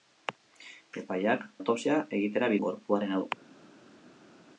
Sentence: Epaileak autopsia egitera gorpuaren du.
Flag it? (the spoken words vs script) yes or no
no